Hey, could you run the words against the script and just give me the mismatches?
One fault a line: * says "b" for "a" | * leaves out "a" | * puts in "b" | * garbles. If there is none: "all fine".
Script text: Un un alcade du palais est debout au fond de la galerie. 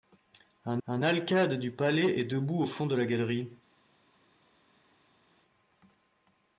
all fine